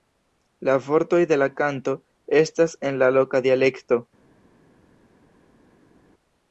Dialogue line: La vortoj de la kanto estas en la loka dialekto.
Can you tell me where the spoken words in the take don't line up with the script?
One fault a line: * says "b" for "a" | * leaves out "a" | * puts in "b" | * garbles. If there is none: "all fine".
all fine